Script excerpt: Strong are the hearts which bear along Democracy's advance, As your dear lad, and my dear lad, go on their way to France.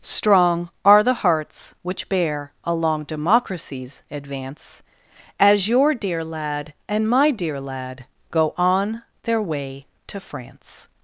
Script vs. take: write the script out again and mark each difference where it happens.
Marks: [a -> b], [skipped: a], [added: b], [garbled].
Strong are the hearts which bear along Democracy's advance, As your dear lad, and my dear lad, go on their way to France.